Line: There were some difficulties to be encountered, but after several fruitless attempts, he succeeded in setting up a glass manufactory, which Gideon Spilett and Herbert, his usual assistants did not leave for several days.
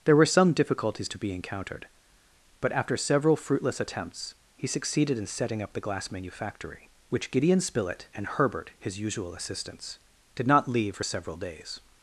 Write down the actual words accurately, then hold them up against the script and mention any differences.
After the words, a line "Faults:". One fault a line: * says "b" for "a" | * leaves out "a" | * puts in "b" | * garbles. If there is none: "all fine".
There were some difficulties to be encountered, but after several fruitless attempts, he succeeded in setting up the glass manufactory, which Gideon Spilett and Herbert, his usual assistants did not leave for several days.
Faults:
* says "the" for "a"